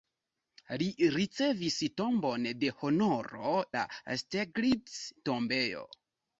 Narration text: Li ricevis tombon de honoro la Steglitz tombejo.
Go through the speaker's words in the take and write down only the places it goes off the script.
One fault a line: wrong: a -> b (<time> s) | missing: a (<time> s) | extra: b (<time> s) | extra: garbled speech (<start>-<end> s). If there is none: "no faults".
no faults